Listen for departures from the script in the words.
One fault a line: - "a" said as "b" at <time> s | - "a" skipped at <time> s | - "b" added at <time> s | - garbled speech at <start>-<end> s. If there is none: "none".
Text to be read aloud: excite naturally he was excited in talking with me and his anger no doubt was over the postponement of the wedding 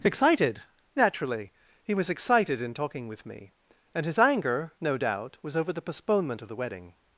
- "excite" said as "excited" at 0.0 s